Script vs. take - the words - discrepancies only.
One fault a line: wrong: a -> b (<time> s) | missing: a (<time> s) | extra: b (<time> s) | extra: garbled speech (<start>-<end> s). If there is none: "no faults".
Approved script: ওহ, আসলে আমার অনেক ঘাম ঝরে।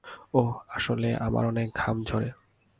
no faults